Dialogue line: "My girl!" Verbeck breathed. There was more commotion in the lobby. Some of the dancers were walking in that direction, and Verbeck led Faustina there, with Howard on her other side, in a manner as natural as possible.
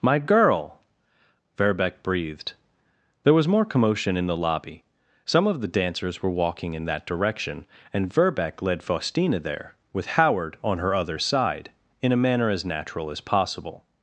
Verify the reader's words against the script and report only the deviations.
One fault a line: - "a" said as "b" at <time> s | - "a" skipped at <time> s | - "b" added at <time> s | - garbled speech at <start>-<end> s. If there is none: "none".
none